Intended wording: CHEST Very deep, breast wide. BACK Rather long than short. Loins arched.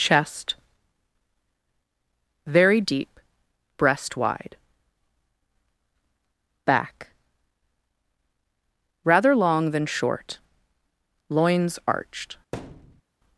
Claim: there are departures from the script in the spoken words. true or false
false